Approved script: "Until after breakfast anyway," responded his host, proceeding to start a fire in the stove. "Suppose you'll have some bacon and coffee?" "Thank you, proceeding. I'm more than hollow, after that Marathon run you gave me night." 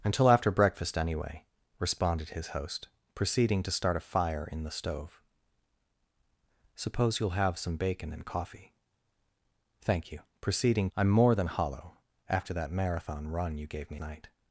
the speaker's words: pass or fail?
pass